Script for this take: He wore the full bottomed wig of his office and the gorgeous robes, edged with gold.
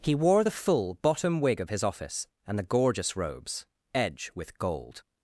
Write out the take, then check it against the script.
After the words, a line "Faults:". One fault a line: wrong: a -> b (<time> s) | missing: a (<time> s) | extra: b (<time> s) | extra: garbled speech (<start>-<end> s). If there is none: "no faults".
He wore the full bottom wig of his office and the gorgeous robes, edge with gold.
Faults:
wrong: bottomed -> bottom (1.0 s)
wrong: edged -> edge (3.9 s)